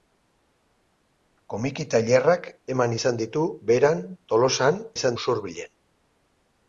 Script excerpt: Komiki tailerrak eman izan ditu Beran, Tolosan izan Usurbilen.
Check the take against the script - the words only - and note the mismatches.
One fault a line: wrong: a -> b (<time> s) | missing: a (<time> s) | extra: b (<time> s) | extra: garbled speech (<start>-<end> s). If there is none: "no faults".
no faults